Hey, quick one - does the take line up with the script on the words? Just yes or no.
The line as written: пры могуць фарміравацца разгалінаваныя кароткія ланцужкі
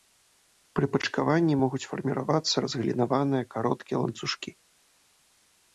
no